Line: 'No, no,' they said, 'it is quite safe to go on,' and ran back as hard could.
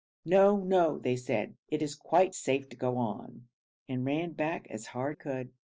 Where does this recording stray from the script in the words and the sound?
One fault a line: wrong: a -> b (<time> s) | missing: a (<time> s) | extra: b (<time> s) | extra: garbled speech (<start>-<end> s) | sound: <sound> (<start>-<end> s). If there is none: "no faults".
no faults